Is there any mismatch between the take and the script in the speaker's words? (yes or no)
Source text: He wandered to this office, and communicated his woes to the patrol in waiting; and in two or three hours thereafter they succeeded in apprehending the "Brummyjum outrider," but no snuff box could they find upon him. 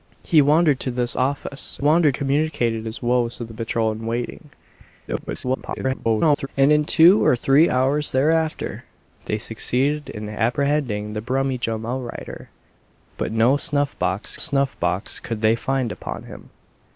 yes